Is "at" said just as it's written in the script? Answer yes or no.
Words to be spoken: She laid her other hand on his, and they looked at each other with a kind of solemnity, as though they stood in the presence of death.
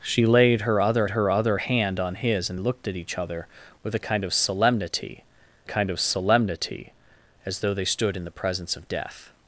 yes